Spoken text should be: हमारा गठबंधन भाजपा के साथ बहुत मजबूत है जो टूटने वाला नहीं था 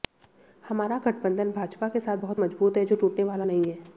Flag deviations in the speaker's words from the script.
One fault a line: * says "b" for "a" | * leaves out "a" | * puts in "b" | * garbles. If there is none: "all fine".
* says "है" for "था"